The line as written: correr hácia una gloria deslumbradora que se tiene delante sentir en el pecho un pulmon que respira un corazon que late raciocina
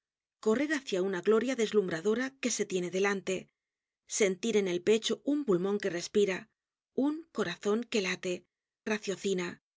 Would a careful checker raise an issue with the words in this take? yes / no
no